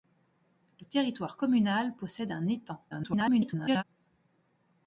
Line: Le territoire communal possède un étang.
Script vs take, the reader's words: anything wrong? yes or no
yes